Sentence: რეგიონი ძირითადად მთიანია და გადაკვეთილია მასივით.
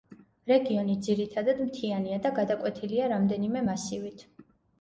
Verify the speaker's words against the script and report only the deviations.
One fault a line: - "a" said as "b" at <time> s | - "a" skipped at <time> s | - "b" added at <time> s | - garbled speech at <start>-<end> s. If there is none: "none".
- "რამდენიმე" added at 3.2 s